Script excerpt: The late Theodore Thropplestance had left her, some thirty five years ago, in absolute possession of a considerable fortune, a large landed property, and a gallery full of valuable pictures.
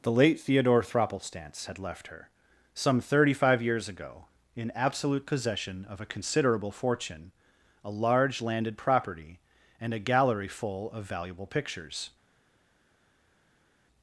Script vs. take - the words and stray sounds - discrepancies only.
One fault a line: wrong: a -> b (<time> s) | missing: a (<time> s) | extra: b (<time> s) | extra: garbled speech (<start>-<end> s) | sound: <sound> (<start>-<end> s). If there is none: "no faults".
no faults